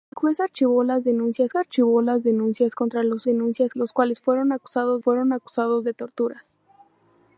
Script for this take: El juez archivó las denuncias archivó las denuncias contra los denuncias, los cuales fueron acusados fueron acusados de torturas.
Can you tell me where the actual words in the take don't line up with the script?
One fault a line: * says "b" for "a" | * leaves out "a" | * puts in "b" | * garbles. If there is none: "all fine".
all fine